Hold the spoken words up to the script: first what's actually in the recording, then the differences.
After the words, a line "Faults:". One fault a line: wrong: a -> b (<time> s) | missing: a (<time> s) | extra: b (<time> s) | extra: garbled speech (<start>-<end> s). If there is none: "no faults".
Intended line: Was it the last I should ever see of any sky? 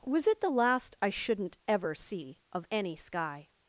Was it the last I shouldn't ever see of any sky?
Faults:
wrong: should -> shouldn't (1.1 s)